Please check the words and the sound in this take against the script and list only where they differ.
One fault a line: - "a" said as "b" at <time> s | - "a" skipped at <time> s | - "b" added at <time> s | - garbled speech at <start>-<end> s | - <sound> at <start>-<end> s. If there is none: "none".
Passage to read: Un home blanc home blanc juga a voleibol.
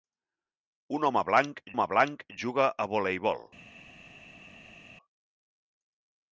none